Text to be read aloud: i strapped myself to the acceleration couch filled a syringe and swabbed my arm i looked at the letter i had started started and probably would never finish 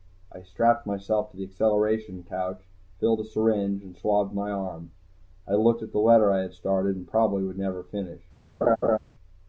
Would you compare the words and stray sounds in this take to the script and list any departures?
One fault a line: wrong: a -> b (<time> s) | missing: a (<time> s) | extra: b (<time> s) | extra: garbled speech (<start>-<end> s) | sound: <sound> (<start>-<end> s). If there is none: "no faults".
missing: started (7.0 s)
sound: laugh (8.6-9.0 s)